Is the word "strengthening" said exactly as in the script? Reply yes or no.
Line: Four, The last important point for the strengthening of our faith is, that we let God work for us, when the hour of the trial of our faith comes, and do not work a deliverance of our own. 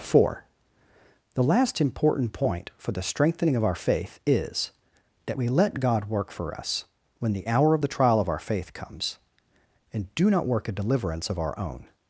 yes